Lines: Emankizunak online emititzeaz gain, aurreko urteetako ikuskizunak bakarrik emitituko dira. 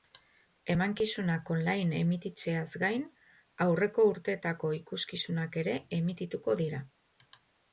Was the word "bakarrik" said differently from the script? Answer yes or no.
yes